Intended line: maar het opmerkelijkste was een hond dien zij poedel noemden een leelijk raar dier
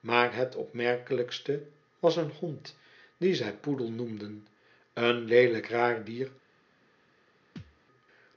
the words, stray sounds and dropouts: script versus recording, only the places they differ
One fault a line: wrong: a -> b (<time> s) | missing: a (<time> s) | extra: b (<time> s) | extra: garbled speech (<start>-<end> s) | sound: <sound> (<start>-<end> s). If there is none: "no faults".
sound: thud (7.6-7.8 s)